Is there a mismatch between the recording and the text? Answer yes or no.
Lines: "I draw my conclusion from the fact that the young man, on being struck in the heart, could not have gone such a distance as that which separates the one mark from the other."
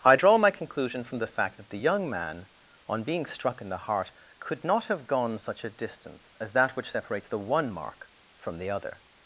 no